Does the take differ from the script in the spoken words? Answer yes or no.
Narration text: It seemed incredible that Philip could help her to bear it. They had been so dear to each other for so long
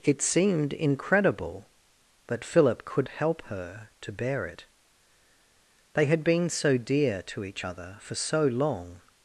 no